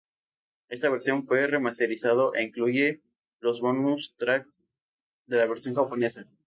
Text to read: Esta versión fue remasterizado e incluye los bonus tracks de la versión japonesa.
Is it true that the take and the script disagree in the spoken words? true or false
false